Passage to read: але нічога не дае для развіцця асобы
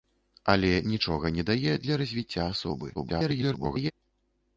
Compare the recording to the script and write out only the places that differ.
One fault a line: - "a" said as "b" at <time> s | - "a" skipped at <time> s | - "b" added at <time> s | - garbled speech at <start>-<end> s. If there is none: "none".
- garbled speech at 2.9-3.9 s